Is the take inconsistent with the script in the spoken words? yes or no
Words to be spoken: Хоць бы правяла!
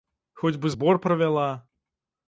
yes